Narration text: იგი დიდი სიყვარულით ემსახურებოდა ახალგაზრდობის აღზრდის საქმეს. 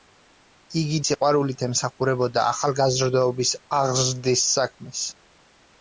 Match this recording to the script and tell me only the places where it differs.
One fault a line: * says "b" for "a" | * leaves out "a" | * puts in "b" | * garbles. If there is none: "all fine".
* leaves out "დიდი"